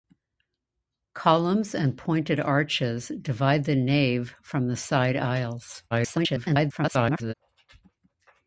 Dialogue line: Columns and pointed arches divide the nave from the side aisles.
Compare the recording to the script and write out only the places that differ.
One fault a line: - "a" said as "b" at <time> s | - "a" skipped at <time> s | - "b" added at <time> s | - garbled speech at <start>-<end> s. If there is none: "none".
- garbled speech at 5.9-7.3 s